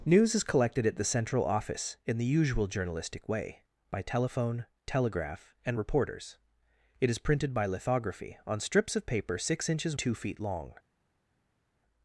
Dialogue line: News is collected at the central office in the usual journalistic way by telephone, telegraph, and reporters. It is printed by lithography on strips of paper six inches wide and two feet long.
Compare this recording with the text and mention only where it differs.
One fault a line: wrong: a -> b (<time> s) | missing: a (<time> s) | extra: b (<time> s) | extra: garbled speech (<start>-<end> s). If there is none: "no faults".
missing: wide and (10.0 s)